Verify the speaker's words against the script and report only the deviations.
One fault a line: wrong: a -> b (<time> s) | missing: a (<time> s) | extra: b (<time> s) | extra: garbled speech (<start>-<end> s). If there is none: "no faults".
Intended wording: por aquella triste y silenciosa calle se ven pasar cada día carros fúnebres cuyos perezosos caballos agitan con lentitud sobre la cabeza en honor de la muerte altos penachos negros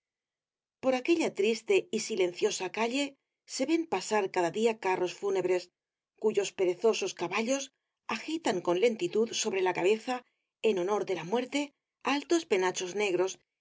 no faults